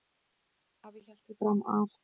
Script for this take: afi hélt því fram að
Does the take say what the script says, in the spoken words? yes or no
yes